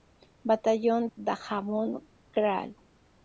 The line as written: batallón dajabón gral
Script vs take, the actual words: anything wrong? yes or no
no